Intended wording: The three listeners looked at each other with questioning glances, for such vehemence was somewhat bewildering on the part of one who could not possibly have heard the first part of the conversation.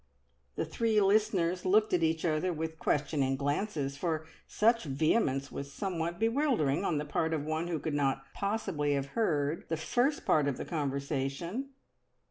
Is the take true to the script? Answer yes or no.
yes